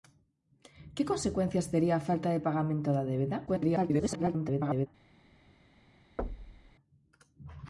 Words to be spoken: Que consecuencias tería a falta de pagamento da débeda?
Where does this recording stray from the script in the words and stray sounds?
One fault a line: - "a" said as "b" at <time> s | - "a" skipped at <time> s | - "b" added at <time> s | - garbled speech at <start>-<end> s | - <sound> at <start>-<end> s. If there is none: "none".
- garbled speech at 3.5-4.9 s
- thud at 6.2-6.8 s